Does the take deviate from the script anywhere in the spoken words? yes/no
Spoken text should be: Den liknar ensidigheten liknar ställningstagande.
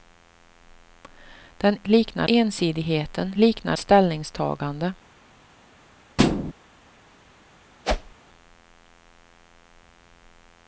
no